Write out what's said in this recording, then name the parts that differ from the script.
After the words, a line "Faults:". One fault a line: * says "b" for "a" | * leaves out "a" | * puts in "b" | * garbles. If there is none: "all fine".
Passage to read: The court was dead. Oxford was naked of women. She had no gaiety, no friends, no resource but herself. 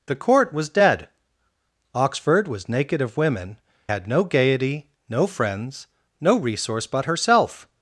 The court was dead. Oxford was naked of women. Had no gaiety, no friends, no resource but herself.
Faults:
* leaves out "She"